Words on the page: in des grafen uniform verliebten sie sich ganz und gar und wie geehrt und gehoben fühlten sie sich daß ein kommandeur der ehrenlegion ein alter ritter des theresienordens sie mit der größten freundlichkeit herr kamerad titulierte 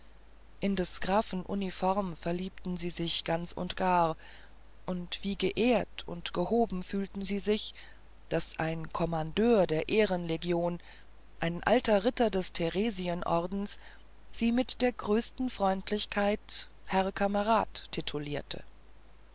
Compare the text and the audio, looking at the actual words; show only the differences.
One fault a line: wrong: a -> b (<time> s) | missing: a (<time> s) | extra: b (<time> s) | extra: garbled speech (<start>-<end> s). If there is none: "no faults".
no faults